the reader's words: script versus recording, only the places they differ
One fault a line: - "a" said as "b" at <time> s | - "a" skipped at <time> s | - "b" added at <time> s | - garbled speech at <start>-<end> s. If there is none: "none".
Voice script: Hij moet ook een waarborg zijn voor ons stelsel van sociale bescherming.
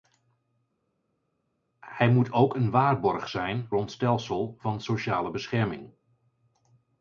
- "voor" skipped at 3.7 s